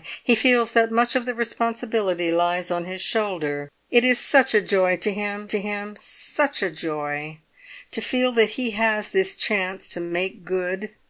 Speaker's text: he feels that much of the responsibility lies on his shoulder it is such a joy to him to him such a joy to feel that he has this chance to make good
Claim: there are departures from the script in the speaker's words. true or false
false